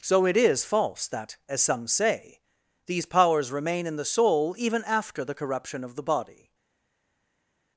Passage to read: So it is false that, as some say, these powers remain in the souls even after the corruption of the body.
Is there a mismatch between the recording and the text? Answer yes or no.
yes